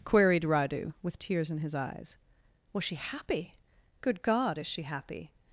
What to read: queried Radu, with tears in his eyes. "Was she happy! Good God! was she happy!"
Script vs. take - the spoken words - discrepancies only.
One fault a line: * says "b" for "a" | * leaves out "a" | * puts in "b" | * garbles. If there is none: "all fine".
* says "is" for "was"